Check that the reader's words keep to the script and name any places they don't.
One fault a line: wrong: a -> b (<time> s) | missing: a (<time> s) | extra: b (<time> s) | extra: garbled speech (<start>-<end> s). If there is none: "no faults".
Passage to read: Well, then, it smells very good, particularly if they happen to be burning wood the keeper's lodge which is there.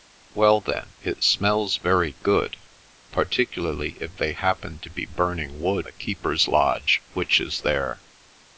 no faults